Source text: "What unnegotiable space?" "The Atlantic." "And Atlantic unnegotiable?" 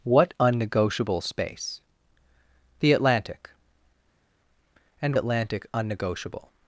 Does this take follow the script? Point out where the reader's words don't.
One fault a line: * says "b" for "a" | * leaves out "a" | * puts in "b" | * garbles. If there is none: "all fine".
all fine